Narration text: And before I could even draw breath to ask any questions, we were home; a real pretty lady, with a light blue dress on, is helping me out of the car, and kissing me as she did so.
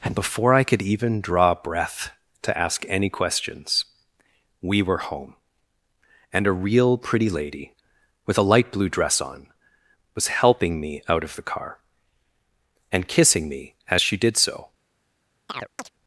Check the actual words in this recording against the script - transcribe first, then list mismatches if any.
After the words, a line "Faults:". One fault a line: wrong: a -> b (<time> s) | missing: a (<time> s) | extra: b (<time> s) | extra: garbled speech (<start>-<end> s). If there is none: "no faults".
And before I could even draw breath to ask any questions, we were home; and a real pretty lady, with a light blue dress on, was helping me out of the car, and kissing me as she did so.
Faults:
extra: and (6.3 s)
wrong: is -> was (10.2 s)